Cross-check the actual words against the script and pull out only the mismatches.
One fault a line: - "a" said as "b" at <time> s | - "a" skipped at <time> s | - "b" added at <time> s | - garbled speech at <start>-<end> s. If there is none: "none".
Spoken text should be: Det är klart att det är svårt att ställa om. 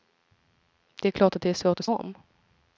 - "ställa" skipped at 1.9 s